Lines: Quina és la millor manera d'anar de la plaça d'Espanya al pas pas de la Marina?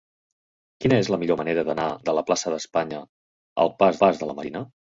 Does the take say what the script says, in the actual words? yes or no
yes